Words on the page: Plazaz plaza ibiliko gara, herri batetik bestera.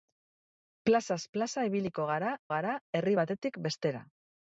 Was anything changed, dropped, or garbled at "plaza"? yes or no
no